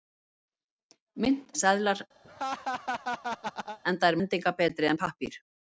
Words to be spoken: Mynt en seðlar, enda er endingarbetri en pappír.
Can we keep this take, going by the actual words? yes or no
yes